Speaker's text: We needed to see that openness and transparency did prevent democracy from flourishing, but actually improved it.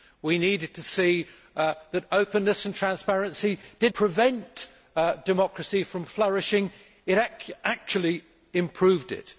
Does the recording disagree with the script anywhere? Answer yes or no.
no